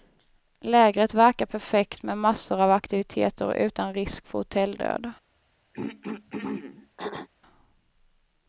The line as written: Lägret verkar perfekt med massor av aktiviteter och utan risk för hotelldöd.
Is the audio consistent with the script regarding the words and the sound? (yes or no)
no